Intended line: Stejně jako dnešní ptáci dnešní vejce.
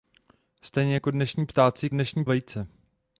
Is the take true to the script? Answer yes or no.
yes